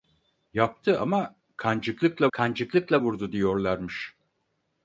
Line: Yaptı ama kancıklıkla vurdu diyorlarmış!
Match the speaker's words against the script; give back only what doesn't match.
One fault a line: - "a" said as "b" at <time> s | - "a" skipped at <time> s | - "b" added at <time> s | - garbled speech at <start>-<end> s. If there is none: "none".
- "kancıklıkla" added at 2.3 s